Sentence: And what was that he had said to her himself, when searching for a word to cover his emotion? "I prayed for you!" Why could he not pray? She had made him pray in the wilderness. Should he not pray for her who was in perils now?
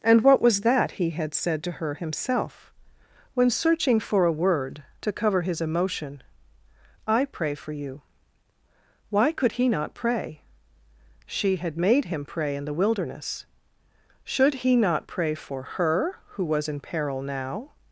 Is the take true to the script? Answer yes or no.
no